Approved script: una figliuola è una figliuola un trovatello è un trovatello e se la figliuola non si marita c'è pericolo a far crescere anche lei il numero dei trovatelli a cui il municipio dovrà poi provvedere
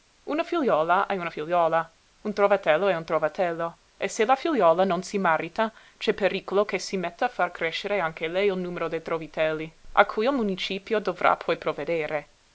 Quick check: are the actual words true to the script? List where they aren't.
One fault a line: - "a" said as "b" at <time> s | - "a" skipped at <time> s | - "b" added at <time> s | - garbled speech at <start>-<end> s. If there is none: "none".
- "che si metta" added at 6.6 s